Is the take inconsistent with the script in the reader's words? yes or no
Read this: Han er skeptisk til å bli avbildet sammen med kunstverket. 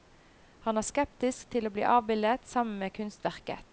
no